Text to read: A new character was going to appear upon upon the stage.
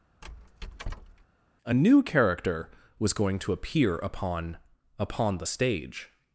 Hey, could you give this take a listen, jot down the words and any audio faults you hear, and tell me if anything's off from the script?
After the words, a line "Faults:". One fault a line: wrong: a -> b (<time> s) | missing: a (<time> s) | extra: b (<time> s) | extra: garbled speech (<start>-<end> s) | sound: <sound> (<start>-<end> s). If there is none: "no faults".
A new character was going to appear upon upon the stage.
Faults:
sound: squeak (0.2-1.3 s)